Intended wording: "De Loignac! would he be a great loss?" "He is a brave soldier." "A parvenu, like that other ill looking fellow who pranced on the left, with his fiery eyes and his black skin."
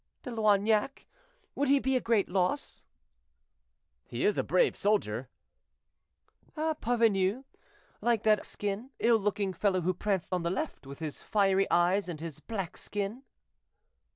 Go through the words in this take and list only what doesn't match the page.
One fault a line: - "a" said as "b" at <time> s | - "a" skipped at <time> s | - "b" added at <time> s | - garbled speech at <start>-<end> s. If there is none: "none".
- "other" said as "skin" at 8.4 s